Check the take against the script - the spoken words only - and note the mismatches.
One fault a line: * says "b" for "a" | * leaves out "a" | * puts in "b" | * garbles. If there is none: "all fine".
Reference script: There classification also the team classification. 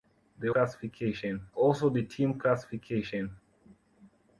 all fine